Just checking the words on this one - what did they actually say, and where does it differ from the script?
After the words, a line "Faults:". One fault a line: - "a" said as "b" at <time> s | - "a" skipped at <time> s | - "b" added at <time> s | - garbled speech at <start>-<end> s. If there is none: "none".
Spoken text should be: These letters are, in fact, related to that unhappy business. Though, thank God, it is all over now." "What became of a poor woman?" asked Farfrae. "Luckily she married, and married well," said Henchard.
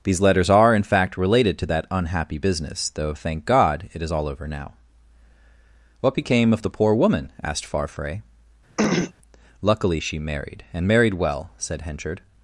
These letters are, in fact, related to that unhappy business. Though, thank God, it is all over now." "What became of the poor woman?" asked Farfrae. "Luckily she married, and married well," said Henchard.
Faults:
- "a" said as "the" at 6.6 s